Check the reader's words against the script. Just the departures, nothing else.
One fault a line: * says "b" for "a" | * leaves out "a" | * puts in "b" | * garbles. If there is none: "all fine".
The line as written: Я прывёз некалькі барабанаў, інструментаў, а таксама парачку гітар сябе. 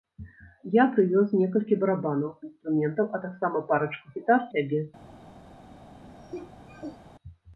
all fine